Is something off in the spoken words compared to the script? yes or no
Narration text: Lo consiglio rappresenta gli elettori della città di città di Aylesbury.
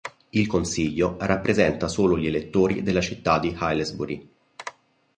yes